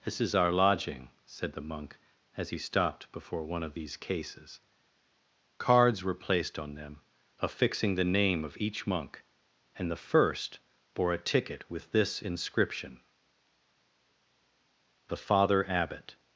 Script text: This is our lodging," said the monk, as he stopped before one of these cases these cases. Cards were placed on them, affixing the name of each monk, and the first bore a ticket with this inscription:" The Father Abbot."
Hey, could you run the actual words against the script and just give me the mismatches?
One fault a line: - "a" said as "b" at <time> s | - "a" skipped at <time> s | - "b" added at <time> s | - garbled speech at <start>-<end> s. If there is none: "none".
- "these cases" skipped at 4.6 s